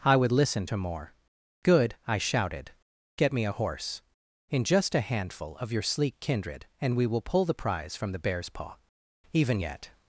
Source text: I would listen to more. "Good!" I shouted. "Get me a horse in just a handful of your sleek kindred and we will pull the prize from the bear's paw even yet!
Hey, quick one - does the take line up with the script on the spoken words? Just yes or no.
yes